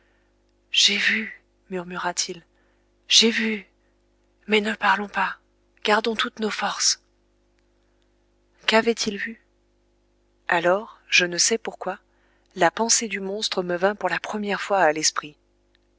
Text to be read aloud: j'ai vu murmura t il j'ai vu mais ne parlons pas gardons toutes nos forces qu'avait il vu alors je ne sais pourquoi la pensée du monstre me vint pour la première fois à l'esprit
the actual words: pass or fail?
pass